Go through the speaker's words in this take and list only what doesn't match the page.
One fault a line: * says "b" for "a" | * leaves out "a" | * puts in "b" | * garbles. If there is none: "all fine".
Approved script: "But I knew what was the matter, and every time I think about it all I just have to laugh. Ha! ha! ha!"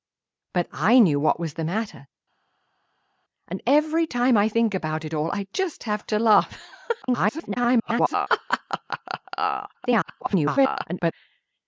* garbles
* garbles